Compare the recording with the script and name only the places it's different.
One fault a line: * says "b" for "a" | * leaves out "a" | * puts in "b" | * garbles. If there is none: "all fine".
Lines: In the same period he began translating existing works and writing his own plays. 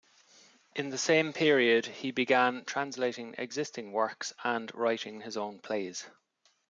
all fine